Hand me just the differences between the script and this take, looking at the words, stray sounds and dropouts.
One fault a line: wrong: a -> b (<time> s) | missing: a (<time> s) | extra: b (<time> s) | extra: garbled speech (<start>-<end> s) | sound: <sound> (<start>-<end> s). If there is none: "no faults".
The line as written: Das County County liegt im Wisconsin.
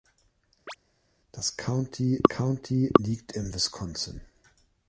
sound: chirp (0.7-0.8 s)